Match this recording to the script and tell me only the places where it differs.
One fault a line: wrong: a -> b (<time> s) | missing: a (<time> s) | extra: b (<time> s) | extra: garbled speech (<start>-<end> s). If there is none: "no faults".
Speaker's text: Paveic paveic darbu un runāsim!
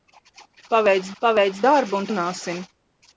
no faults